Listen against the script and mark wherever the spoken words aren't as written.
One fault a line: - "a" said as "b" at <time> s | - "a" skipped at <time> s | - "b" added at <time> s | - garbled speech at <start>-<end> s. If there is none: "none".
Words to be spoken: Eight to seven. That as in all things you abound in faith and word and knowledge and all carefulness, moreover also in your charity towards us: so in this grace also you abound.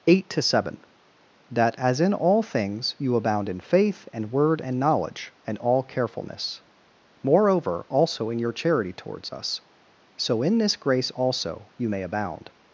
- "may" added at 11.9 s